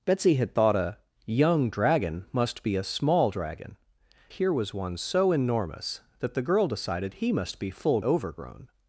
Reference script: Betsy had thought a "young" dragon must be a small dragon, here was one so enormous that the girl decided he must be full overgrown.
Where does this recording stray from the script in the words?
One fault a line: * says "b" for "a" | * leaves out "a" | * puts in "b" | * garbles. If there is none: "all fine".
all fine